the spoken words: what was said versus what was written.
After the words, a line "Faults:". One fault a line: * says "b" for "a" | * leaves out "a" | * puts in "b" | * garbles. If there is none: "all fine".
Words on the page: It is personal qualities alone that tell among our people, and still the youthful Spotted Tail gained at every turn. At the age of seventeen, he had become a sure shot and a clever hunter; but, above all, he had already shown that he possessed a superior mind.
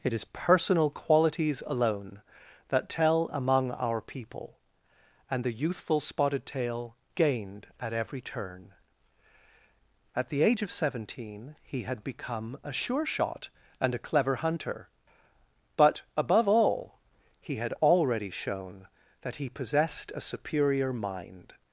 It is personal qualities alone that tell among our people, and the youthful Spotted Tail gained at every turn. At the age of seventeen, he had become a sure shot and a clever hunter; but, above all, he had already shown that he possessed a superior mind.
Faults:
* leaves out "still"